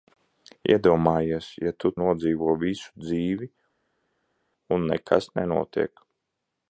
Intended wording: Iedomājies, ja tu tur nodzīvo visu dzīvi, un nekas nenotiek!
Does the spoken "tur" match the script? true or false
false